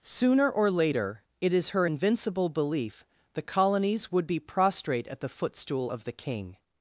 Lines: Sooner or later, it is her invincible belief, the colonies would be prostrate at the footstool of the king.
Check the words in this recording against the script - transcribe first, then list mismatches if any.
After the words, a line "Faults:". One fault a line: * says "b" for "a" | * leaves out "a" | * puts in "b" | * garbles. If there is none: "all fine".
Sooner or later, it is her invincible belief, the colonies would be prostrate at the footstool of the king.
Faults:
all fine